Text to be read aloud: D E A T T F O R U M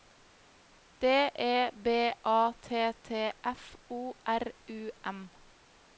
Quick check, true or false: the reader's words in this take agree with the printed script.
false